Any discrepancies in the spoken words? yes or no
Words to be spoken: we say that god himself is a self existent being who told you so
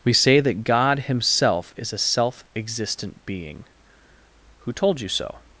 no